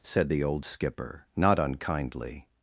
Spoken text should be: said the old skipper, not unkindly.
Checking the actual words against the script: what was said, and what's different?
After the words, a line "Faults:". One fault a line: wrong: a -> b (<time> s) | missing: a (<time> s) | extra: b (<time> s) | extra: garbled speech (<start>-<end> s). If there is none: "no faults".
said the old skipper, not unkindly.
Faults:
no faults